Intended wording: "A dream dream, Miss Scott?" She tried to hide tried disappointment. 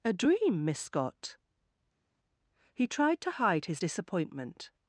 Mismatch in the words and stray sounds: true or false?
true